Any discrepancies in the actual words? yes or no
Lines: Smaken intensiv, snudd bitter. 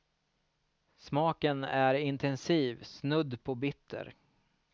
yes